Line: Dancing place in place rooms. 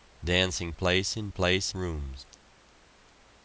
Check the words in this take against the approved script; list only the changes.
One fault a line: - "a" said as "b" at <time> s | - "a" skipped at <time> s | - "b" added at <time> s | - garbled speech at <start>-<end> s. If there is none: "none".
none